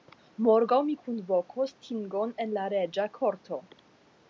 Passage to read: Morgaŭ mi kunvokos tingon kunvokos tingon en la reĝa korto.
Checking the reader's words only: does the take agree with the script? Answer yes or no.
no